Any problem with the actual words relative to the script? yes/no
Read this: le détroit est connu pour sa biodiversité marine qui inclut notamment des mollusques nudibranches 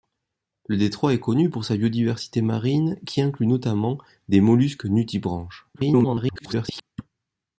yes